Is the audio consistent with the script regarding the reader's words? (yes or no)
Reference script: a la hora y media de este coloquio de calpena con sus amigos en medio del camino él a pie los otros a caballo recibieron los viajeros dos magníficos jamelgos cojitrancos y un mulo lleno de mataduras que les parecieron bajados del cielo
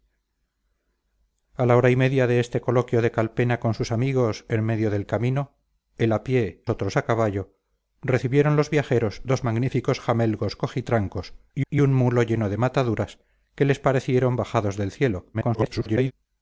no